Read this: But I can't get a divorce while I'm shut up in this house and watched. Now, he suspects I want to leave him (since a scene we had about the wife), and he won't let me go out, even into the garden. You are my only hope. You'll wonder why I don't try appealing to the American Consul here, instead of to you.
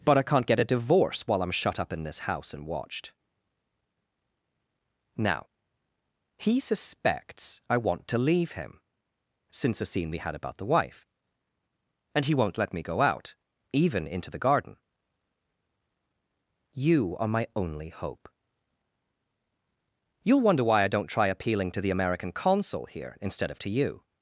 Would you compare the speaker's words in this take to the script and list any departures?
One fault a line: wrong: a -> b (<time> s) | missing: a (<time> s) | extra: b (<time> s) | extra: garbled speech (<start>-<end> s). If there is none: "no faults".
no faults